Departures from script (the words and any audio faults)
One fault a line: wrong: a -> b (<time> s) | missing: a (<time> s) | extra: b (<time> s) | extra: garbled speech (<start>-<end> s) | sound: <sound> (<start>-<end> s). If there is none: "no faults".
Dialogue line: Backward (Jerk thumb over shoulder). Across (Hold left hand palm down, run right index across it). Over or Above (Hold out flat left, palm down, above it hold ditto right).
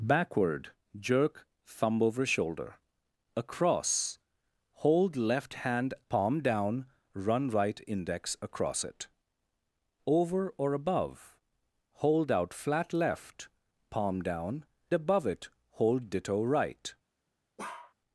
sound: bark (17.6-17.9 s)